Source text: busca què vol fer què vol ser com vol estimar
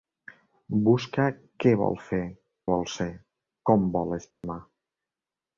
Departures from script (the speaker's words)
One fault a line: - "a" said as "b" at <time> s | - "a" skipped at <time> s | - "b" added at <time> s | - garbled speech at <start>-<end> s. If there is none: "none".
- "què" skipped at 2.2 s